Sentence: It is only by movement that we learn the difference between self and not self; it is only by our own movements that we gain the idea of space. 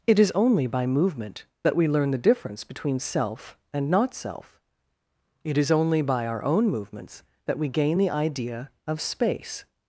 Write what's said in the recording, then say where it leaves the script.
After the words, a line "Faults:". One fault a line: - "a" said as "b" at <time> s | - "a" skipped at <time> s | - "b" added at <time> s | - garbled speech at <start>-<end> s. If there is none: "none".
It is only by movement that we learn the difference between self and not self; it is only by our own movements that we gain the idea of space.
Faults:
none